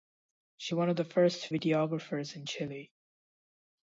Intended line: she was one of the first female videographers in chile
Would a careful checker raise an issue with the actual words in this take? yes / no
yes